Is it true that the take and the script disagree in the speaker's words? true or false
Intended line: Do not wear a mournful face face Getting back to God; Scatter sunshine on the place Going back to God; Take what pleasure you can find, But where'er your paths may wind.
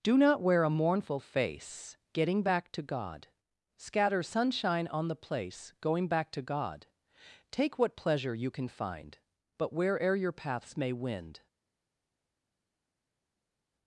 true